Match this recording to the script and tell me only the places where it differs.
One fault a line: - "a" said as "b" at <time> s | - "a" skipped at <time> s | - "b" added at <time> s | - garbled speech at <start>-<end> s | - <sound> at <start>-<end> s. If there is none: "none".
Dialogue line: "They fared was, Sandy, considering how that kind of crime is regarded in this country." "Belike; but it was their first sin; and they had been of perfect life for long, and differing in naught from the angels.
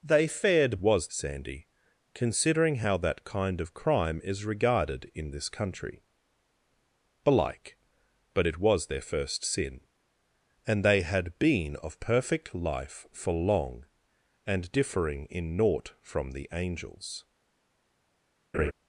- laugh at 18.5-18.7 s